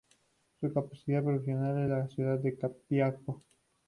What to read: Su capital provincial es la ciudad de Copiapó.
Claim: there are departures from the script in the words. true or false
false